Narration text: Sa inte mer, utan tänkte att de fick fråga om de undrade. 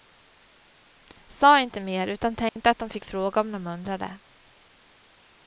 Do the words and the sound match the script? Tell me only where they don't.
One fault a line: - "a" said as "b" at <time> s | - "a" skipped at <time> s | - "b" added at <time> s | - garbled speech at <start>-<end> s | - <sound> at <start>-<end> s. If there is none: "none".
- dropout at 2.5-2.6 s